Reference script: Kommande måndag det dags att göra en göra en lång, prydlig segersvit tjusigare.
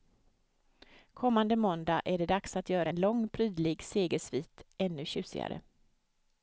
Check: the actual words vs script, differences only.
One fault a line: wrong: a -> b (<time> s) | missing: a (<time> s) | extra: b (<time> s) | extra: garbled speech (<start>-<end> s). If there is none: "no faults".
extra: är (2.0 s)
missing: göra en (3.0 s)
extra: ännu (4.8 s)